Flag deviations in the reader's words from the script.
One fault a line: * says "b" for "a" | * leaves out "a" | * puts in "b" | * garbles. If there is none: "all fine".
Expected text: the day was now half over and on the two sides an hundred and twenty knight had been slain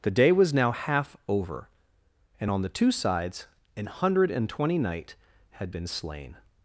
all fine